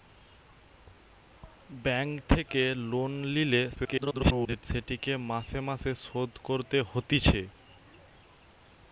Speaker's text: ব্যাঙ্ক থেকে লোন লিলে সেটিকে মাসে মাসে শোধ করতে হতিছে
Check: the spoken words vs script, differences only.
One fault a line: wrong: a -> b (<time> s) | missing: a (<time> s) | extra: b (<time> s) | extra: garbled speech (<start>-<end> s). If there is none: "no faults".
extra: garbled speech (3.7-4.7 s)